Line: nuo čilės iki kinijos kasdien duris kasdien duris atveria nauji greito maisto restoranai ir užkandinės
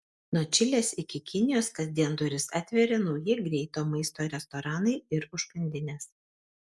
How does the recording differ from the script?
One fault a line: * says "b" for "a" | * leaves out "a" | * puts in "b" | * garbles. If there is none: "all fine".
* leaves out "kasdien duris"